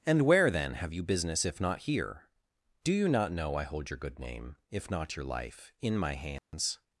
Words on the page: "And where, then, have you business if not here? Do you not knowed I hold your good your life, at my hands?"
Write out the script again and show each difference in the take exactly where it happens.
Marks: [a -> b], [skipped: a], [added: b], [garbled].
"And where, then, have you business if not here? Do you not [knowed -> know] I hold your good [added: name if not] your life, [at -> in] my hands?"